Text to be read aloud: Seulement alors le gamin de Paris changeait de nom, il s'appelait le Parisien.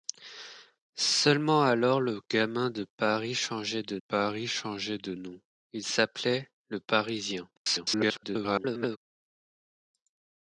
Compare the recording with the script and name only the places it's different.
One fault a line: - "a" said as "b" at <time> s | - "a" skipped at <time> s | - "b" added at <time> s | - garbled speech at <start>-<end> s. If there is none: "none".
- "Paris changeait de" added at 4.0 s
- garbled speech at 7.6-9.0 s